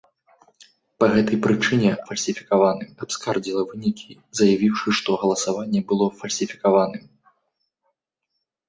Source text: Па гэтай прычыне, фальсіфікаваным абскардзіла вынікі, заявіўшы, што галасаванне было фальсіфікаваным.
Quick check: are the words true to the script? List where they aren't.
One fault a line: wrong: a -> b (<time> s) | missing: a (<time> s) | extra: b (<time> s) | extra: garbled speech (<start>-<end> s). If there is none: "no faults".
no faults